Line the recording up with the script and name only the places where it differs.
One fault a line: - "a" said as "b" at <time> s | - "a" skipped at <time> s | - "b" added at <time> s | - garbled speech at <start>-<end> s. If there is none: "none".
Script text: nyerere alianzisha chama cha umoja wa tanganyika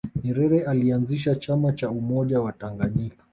none